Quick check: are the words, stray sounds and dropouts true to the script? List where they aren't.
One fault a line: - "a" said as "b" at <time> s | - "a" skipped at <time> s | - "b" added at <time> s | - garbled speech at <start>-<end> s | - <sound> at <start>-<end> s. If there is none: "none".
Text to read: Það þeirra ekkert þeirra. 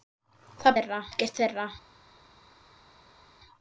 none